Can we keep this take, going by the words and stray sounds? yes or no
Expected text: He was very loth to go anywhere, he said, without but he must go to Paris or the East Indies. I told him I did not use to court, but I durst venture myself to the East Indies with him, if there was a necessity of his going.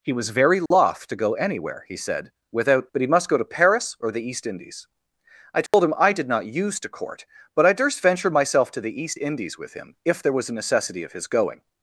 no